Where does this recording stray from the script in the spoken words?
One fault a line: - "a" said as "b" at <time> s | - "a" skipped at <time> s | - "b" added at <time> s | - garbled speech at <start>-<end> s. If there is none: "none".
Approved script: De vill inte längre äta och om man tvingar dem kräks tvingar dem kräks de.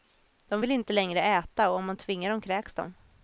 - "tvingar dem kräks" skipped at 2.7 s